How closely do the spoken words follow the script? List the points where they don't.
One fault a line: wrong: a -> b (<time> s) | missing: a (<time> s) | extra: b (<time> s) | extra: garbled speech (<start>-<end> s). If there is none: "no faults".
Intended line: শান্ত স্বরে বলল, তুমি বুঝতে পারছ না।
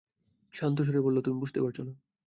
no faults